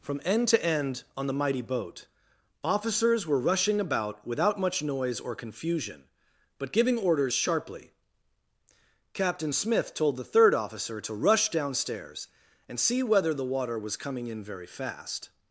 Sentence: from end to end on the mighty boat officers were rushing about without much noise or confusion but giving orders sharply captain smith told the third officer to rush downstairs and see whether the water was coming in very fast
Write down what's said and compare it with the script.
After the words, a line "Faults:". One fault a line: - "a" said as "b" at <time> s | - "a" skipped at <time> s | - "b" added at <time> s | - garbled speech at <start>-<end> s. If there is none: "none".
from end to end on the mighty boat officers were rushing about without much noise or confusion but giving orders sharply captain smith told the third officer to rush downstairs and see whether the water was coming in very fast
Faults:
none